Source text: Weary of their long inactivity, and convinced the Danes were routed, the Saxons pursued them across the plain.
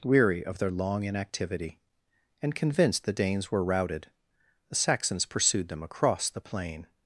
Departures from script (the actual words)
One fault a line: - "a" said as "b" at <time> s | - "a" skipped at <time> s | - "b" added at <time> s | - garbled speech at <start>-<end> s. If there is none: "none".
none